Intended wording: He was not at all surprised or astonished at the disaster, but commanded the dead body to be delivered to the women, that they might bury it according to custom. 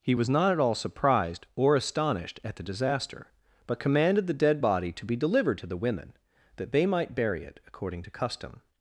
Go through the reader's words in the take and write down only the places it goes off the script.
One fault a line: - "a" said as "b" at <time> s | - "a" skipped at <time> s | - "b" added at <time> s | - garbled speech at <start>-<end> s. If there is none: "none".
none